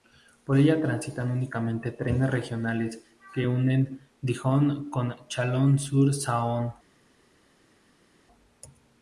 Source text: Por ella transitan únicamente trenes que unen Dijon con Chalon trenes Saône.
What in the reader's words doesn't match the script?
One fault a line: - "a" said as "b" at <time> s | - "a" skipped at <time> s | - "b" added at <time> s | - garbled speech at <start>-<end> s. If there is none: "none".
- "regionales" added at 2.3 s
- "trenes" said as "sur" at 5.8 s